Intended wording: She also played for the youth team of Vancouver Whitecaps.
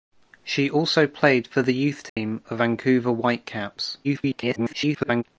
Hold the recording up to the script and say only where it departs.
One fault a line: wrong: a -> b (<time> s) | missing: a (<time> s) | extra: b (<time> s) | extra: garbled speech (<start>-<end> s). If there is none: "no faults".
extra: garbled speech (4.0-5.2 s)